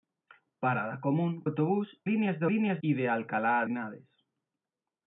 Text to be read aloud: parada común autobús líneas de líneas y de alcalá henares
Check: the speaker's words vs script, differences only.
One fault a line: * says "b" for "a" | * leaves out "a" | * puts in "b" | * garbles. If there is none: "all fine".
all fine